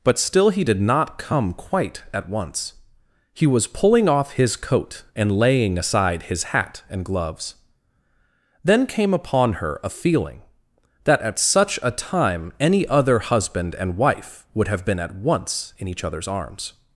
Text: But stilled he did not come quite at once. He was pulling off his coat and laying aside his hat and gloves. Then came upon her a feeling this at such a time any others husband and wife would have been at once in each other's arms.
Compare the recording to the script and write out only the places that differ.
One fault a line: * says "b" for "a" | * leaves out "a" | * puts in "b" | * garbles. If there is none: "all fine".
* says "still" for "stilled"
* says "that" for "this"
* says "other" for "others"